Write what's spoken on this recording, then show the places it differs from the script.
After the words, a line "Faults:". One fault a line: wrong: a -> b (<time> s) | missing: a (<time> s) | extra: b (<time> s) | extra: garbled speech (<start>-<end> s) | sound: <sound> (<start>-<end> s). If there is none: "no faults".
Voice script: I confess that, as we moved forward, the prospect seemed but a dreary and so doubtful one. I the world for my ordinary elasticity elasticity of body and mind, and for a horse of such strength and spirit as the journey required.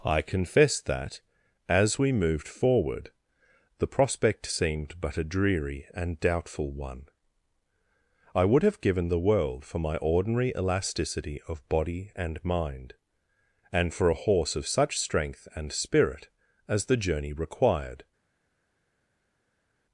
I confess that, as we moved forward, the prospect seemed but a dreary and doubtful one. I would have given the world for my ordinary elasticity of body and mind, and for a horse of such strength and spirit as the journey required.
Faults:
missing: so (6.2 s)
extra: would have given (8.5 s)
missing: elasticity (11.4 s)